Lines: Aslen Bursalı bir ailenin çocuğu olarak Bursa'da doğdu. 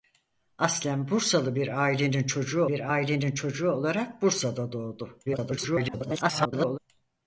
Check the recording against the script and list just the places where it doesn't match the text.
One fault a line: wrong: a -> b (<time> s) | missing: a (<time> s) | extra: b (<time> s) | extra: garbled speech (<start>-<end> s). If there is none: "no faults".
extra: bir ailenin çocuğu (2.7 s)
extra: garbled speech (5.3-6.8 s)